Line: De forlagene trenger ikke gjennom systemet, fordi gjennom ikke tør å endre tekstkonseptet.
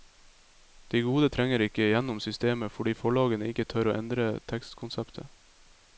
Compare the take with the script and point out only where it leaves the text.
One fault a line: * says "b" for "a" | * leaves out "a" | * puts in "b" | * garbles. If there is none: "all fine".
* says "gode" for "forlagene"
* says "forlagene" for "gjennom"